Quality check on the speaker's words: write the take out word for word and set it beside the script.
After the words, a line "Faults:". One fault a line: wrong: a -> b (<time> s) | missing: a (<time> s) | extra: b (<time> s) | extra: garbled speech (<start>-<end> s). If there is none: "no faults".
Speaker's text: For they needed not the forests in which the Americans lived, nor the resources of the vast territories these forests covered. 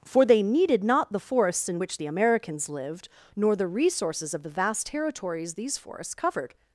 For they needed not the forests in which the Americans lived, nor the resources of the vast territories these forests covered.
Faults:
no faults